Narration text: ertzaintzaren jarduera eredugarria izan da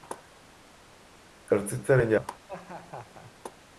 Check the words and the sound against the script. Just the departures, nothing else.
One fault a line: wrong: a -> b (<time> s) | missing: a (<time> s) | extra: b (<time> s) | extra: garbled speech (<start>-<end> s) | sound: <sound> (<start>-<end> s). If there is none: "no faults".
missing: jarduera eredugarria izan (2.1 s)
sound: laugh (2.5-3.3 s)